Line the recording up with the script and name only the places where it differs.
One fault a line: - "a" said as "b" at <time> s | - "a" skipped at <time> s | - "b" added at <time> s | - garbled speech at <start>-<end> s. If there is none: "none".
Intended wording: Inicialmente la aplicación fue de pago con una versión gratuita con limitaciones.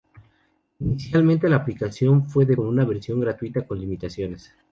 - "pago" skipped at 2.6 s